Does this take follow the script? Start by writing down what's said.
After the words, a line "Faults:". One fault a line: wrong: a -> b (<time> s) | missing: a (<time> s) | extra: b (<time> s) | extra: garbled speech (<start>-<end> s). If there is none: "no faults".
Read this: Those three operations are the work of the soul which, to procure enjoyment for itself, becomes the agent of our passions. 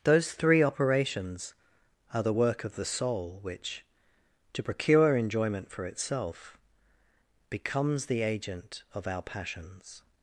Those three operations are the work of the soul which, to procure enjoyment for itself, becomes the agent of our passions.
Faults:
no faults